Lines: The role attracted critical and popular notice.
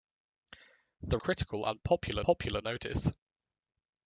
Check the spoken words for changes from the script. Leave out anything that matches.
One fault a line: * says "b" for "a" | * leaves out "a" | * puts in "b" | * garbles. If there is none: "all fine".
* leaves out "role attracted"
* puts in "popular"